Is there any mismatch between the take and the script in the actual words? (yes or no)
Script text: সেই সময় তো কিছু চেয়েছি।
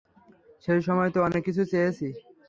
yes